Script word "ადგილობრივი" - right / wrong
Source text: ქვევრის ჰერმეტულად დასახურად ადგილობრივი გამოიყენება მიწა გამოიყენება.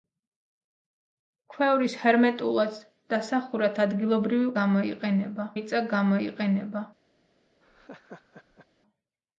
right